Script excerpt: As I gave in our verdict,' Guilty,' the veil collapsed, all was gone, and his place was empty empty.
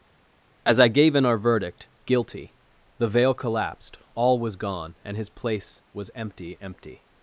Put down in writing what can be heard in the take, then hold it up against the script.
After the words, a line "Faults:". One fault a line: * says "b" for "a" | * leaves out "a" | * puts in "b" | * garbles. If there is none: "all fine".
As I gave in our verdict,' Guilty,' the veil collapsed, all was gone, and his place was empty empty.
Faults:
all fine